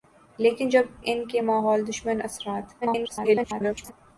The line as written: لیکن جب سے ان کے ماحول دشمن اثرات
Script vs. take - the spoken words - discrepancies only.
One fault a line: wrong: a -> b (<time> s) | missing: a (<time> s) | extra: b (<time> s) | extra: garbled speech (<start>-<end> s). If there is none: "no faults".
missing: سے (0.8 s)
extra: garbled speech (2.8-3.9 s)